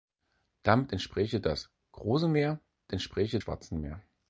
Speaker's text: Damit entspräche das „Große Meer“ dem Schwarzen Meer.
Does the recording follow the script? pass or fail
fail